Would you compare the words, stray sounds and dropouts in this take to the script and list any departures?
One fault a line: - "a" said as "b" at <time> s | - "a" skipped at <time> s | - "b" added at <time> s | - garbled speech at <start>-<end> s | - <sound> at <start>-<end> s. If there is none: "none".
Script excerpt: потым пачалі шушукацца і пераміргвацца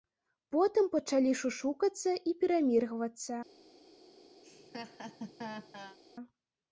- laugh at 4.4-6.0 s